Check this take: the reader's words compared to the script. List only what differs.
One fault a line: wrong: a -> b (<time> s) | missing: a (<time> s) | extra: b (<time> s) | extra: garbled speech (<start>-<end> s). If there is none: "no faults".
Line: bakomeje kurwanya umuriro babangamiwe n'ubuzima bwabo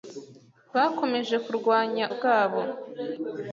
missing: umuriro babangamiwe n'ubuzima (2.0 s)